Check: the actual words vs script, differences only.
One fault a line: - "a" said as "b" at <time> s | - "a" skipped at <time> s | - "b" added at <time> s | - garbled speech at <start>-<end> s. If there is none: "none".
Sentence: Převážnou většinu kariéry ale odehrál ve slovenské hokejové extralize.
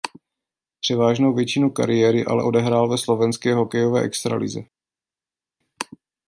none